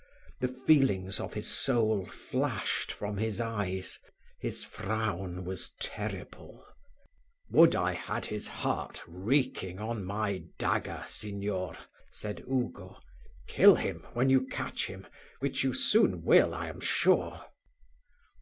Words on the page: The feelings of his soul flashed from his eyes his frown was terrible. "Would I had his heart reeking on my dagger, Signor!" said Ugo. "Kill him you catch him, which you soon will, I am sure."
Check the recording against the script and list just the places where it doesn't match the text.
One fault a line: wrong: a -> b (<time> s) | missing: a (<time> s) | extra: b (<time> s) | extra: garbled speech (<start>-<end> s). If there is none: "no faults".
extra: when (14.1 s)